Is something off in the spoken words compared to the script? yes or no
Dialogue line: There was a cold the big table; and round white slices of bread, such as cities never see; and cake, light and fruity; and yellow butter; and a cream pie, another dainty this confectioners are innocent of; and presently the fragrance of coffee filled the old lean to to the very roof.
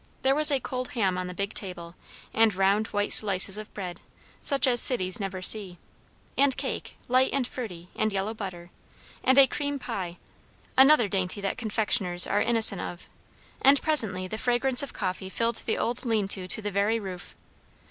yes